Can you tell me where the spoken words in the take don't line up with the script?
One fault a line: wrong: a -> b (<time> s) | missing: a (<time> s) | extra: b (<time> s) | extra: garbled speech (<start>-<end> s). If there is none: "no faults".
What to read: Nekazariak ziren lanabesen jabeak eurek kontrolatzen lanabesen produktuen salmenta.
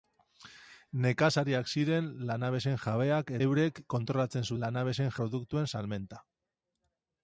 no faults